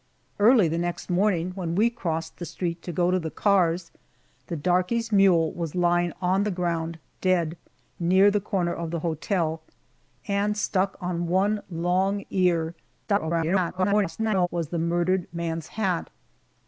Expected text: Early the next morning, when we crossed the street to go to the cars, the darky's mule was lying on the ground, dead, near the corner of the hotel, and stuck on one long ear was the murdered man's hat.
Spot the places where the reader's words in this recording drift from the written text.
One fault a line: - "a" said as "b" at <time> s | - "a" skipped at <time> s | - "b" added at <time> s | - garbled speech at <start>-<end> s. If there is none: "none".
- garbled speech at 13.1-14.5 s